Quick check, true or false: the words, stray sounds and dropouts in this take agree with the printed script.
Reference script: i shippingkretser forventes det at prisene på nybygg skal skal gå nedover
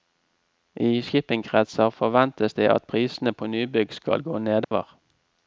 false